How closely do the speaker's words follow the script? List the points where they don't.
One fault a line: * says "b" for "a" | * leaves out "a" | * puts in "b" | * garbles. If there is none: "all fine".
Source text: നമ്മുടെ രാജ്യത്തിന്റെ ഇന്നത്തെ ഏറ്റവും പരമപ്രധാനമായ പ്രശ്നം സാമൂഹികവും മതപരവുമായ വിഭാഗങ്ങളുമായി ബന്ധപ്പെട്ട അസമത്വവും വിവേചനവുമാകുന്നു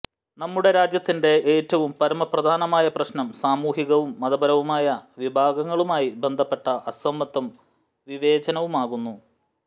* leaves out "ഇന്നത്തെ"